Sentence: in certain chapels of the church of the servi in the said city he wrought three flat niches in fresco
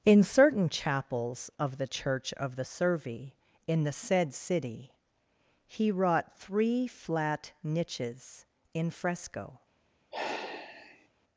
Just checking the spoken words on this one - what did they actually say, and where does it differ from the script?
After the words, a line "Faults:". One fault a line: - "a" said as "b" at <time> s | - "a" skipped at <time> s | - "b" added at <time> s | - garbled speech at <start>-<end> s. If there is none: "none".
in certain chapels of the church of the servi in the said city he wrought three flat niches in fresco
Faults:
none